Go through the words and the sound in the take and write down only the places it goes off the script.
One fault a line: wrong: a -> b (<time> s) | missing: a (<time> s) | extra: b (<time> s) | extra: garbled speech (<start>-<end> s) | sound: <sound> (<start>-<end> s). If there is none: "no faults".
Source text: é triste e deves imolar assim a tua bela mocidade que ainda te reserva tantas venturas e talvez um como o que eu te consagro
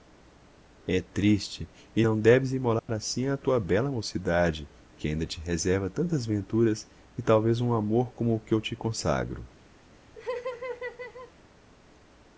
extra: não (2.0 s)
sound: dropout (2.8-2.9 s)
extra: amor (7.7 s)
sound: laugh (10.1-11.3 s)